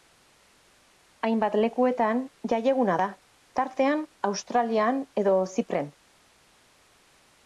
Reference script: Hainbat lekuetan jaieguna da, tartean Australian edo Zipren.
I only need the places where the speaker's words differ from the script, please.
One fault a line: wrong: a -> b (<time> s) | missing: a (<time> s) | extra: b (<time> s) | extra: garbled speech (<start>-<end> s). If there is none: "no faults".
no faults